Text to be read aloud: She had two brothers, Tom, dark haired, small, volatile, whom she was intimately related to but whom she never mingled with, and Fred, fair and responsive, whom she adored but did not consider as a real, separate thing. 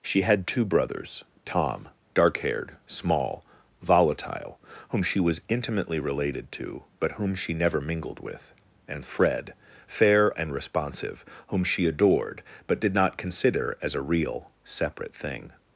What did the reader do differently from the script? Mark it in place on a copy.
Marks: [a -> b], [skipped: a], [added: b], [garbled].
She had two brothers, Tom, dark haired, small, volatile, whom she was intimately related to but whom she never mingled with, and Fred, fair and responsive, whom she adored but did not consider as a real, separate thing.